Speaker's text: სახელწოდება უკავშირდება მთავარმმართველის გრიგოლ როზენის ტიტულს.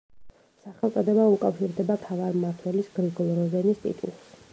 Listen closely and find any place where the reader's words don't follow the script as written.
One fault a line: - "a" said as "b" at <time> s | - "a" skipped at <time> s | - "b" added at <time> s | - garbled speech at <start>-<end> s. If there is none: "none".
none